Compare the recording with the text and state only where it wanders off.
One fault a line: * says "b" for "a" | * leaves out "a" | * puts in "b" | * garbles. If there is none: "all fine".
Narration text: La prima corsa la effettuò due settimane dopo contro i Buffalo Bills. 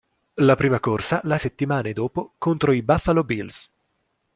* leaves out "effettuò due"